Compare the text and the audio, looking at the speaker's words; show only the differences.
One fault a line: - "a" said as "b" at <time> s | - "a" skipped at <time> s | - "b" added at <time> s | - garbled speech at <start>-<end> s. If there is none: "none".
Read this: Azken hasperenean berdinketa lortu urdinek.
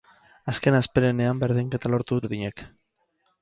none